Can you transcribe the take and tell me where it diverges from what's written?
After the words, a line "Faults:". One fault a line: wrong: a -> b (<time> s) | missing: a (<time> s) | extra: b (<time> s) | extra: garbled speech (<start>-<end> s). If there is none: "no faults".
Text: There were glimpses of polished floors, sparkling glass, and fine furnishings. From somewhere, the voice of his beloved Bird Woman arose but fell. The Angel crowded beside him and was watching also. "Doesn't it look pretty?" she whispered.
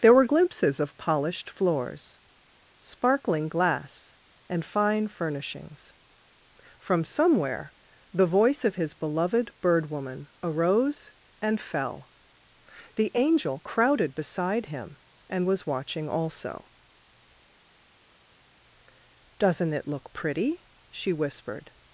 There were glimpses of polished floors, sparkling glass, and fine furnishings. From somewhere, the voice of his beloved Bird Woman arose and fell. The Angel crowded beside him and was watching also. "Doesn't it look pretty?" she whispered.
Faults:
wrong: but -> and (11.4 s)